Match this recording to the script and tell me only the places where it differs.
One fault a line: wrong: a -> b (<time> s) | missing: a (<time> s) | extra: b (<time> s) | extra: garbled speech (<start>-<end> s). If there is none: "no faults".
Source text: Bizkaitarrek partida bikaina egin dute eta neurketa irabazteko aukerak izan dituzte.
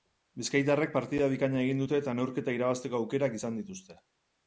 no faults